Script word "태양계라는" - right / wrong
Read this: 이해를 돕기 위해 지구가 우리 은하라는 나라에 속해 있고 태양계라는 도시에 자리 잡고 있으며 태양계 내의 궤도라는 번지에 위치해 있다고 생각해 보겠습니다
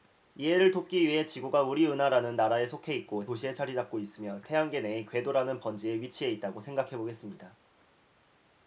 wrong